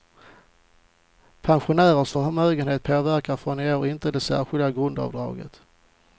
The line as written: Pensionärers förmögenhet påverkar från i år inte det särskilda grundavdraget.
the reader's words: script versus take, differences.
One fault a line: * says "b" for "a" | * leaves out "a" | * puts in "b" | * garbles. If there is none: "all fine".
all fine